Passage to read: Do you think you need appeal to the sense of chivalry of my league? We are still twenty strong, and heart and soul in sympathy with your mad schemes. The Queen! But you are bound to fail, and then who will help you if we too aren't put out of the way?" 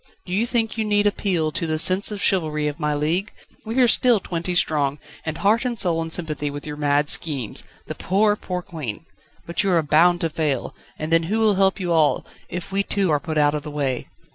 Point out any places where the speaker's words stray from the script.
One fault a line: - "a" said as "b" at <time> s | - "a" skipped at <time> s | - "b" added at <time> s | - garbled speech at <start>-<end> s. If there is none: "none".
- "poor poor" added at 7.9 s
- "all" added at 11.9 s
- "aren't" said as "are" at 13.1 s